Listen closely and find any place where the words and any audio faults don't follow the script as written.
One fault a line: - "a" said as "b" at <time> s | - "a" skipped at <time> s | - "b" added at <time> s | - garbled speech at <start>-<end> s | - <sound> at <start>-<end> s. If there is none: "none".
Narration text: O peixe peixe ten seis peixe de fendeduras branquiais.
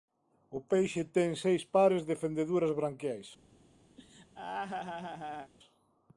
- "peixe" skipped at 1.0 s
- "peixe" said as "pares" at 1.8 s
- laugh at 4.0-5.5 s